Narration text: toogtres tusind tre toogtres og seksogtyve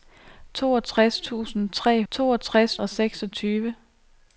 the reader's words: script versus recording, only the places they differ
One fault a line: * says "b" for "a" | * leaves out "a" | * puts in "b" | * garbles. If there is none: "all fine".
all fine